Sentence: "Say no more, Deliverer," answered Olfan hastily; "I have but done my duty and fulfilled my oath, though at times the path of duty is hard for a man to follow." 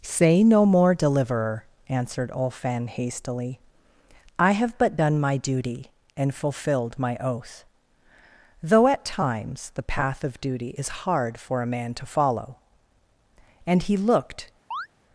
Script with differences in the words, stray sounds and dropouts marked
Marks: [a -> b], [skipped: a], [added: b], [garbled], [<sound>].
"Say no more, Deliverer," answered Olfan hastily; "I have but done my duty and fulfilled my oath, though at times the path of duty is hard for a man to follow." [added: And he looked] [chirp]